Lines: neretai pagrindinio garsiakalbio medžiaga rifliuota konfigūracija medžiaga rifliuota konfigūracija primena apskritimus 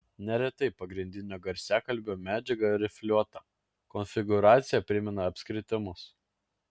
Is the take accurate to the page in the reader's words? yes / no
no